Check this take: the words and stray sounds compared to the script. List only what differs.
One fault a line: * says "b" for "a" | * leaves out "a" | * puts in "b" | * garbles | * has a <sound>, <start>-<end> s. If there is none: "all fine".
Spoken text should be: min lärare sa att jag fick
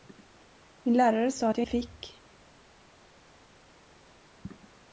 all fine